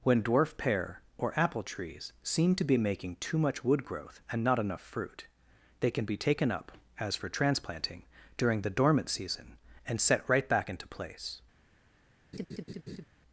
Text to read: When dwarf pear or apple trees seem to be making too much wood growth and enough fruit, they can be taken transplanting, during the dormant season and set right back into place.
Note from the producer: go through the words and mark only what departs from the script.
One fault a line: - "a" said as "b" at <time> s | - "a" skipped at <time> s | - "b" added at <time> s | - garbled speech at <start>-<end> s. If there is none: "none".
- "not" added at 4.4 s
- "up as for" added at 6.5 s